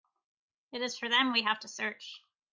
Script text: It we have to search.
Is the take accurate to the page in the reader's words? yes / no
no